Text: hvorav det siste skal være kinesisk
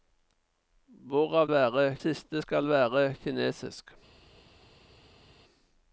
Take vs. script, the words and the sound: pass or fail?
fail